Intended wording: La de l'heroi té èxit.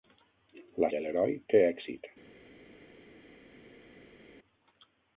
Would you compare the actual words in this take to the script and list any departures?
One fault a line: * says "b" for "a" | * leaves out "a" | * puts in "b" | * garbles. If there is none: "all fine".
all fine